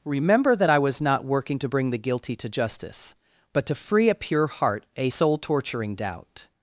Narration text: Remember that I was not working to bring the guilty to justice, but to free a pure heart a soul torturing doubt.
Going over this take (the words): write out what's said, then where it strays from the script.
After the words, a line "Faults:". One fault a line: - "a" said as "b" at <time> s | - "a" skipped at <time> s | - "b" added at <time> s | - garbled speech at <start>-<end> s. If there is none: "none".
Remember that I was not working to bring the guilty to justice, but to free a pure heart a soul torturing doubt.
Faults:
none